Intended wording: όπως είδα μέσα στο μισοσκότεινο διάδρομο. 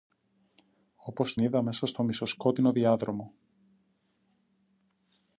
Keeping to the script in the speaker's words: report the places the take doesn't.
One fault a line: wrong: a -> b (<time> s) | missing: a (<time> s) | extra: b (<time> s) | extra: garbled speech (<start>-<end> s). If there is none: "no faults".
no faults